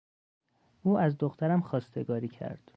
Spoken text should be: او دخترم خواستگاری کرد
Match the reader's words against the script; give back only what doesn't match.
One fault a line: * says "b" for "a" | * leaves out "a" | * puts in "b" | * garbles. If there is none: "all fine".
* puts in "از"